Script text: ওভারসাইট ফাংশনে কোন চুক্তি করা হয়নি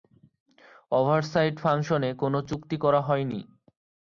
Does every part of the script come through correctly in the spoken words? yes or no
yes